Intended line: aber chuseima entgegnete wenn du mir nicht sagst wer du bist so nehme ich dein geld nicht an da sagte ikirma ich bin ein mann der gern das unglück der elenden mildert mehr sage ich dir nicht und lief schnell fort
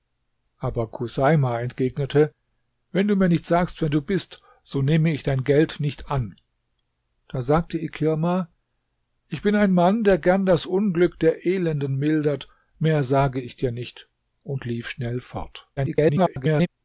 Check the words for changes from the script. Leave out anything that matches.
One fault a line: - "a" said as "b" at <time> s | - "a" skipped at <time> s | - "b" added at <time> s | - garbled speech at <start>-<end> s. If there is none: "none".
- garbled speech at 15.8-16.7 s